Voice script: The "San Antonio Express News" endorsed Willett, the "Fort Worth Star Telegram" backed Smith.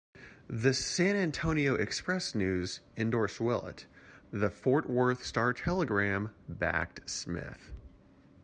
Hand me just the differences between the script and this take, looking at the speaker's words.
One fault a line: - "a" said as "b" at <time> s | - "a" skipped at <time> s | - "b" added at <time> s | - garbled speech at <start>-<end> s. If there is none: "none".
none